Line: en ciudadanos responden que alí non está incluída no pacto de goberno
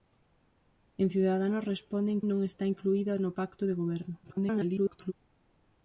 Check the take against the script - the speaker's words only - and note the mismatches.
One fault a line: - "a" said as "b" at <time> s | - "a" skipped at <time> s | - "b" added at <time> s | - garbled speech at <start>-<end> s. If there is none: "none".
- "que alí" skipped at 2.2 s
- garbled speech at 4.2-5.1 s